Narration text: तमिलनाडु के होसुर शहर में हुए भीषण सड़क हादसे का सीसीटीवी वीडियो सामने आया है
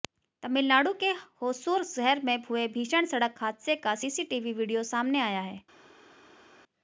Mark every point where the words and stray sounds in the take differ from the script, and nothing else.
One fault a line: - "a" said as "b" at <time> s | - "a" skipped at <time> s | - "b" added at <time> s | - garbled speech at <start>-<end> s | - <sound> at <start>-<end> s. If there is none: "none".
none